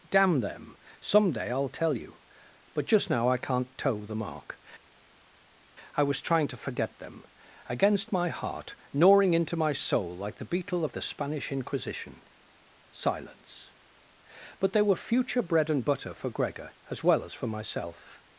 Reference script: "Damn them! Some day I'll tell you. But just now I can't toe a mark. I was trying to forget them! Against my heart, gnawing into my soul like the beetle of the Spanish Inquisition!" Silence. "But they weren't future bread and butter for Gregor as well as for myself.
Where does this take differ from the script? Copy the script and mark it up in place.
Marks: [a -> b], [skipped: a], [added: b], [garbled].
"Damn them! Some day I'll tell you. But just now I can't toe [a -> the] mark. I was trying to forget them! Against my heart, gnawing into my soul like the beetle of the Spanish Inquisition!" Silence. "But they [weren't -> were] future bread and butter for Gregor as well as for myself.